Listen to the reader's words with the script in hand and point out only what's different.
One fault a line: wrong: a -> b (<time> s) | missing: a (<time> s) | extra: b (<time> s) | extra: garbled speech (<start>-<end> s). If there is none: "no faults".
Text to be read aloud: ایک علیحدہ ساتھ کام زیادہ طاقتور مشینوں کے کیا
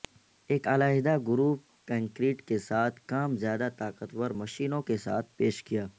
extra: گروپ کنکریٹ کے (1.3 s)
extra: ساتھ پیش (5.0 s)